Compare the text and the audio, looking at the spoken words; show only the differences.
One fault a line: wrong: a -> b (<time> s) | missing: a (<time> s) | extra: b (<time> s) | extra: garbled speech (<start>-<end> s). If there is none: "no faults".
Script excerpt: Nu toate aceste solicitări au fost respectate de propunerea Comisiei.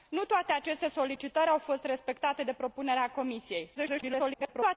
extra: garbled speech (3.7-4.8 s)